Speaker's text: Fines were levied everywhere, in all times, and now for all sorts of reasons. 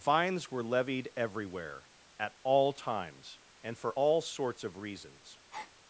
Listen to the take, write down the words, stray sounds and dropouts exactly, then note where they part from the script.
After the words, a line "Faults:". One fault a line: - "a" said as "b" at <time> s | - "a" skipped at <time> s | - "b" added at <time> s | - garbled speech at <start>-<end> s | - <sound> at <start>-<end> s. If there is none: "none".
Fines were levied everywhere, at all times, and for all sorts of reasons.
Faults:
- "in" said as "at" at 2.2 s
- "now" skipped at 3.8 s
- breath at 5.5-5.7 s